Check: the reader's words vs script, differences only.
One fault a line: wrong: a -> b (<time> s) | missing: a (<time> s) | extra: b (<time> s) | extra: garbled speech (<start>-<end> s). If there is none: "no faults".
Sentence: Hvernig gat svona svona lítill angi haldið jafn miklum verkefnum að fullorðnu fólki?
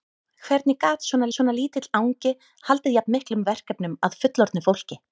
no faults